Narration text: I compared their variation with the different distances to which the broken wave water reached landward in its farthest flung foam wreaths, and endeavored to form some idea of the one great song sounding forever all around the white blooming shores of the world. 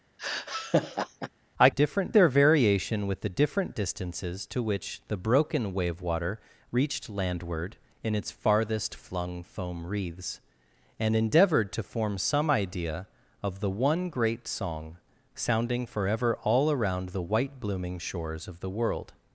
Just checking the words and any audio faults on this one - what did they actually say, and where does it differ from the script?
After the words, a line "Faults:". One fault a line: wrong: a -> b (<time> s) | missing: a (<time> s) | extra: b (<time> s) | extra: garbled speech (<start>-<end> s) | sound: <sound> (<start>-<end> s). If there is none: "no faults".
I different their variation with the different distances to which the broken wave water reached landward in its farthest flung foam wreaths, and endeavored to form some idea of the one great song sounding forever all around the white blooming shores of the world.
Faults:
sound: laugh (0.2-1.3 s)
wrong: compared -> different (1.7 s)